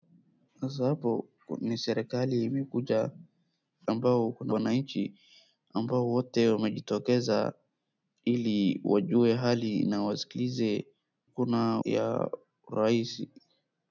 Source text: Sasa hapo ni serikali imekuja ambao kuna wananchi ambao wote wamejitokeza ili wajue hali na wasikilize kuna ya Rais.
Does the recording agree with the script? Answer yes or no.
yes